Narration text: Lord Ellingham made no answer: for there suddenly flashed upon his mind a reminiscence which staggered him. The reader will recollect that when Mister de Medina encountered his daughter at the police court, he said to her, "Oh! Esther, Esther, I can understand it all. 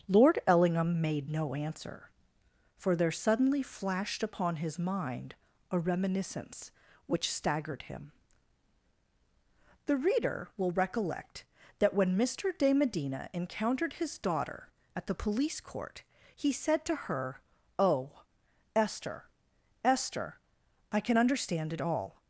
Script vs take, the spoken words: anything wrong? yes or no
no